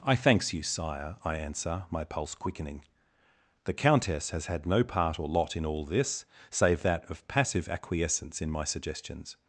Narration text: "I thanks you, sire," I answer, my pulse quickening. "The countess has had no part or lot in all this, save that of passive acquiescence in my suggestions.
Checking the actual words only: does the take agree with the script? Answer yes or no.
yes